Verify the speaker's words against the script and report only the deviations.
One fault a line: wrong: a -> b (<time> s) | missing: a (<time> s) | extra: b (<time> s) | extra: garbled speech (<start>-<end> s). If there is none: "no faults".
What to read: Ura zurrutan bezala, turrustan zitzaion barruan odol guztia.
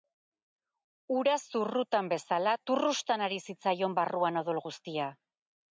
extra: ari (3.3 s)